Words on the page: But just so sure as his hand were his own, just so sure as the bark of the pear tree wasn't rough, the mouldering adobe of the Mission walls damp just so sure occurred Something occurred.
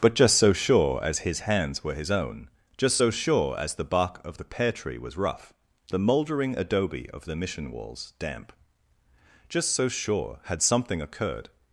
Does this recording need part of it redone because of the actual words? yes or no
yes